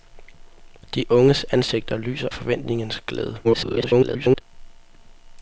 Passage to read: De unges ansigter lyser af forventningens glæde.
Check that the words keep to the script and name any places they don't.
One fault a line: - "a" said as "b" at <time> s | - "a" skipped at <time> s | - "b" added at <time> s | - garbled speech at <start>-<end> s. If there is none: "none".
- "af" skipped at 2.3 s
- garbled speech at 3.4-4.4 s